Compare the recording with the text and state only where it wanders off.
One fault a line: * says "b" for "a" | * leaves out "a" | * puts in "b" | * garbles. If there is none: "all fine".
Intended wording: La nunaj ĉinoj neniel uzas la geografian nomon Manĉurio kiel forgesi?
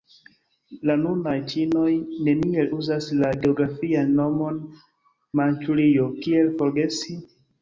all fine